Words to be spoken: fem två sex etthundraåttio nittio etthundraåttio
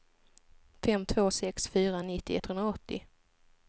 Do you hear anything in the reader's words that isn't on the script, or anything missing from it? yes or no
yes